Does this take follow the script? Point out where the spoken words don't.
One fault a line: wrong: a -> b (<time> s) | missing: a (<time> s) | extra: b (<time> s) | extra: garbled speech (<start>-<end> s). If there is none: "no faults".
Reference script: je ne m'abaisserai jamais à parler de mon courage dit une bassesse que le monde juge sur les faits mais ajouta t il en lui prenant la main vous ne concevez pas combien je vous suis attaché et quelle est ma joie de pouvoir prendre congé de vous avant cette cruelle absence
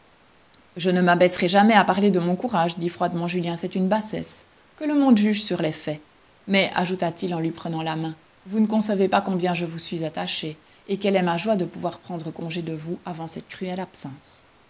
extra: froidement julien c'est (2.9 s)